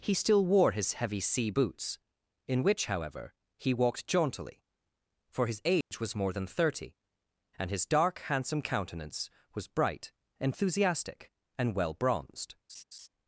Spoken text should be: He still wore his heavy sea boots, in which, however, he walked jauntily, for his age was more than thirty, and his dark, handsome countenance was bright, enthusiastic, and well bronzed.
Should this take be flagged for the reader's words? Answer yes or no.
no